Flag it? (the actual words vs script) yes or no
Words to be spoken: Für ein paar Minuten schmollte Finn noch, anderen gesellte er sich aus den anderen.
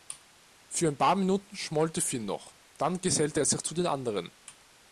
yes